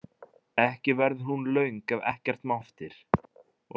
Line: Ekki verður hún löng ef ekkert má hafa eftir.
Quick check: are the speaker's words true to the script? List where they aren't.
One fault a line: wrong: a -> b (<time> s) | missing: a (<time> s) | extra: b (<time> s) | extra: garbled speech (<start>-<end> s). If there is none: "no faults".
missing: hafa (2.6 s)